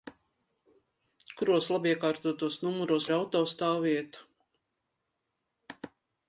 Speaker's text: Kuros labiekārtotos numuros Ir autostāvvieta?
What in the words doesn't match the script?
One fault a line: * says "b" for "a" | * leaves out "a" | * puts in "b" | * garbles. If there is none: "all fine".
all fine